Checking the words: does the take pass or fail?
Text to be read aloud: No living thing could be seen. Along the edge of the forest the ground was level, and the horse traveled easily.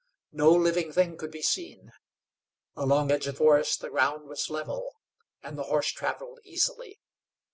fail